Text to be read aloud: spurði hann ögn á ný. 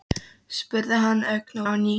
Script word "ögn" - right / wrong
right